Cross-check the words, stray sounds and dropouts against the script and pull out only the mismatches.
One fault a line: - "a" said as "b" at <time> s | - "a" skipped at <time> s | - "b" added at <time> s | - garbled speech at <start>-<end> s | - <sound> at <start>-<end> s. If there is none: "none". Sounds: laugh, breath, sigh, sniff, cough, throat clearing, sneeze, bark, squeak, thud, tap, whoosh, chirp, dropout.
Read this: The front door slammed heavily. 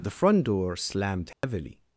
- dropout at 1.3-1.4 s